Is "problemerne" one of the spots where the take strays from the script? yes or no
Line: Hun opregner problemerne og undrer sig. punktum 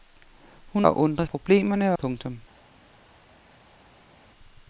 yes